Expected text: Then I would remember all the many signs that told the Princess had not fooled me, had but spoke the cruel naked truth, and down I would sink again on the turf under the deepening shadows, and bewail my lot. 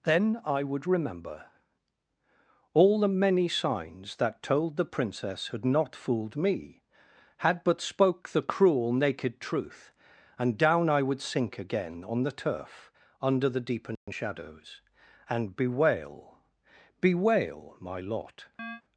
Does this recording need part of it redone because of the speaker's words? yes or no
yes